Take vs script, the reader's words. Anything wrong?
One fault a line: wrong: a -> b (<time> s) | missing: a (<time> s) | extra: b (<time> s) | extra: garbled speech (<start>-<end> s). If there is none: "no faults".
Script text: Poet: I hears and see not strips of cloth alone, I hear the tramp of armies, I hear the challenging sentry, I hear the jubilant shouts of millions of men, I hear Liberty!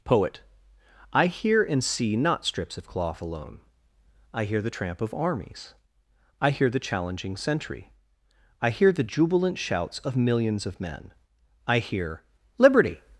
wrong: hears -> hear (1.3 s)